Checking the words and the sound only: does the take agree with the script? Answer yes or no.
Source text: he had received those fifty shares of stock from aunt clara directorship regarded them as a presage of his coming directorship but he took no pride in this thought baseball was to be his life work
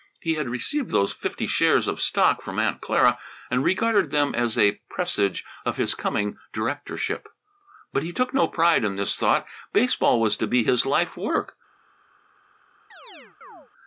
no